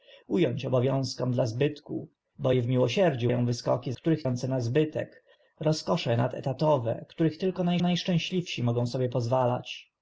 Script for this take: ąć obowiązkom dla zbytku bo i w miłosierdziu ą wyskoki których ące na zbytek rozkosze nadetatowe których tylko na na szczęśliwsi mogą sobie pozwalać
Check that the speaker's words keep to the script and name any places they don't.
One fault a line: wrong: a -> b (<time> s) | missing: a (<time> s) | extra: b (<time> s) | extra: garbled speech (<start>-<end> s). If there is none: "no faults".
no faults